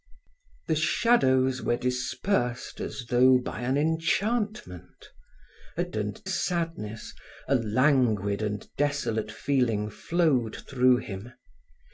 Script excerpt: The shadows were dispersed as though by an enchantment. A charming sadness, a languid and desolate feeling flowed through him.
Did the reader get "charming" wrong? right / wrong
wrong